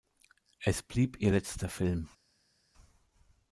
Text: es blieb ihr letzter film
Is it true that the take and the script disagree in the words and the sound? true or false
false